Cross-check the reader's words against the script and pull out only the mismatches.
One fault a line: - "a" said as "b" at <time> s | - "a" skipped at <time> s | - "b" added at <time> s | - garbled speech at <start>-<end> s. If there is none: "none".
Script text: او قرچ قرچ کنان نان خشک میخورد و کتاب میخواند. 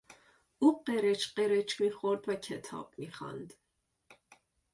- "کنان نان خشک" skipped at 1.8 s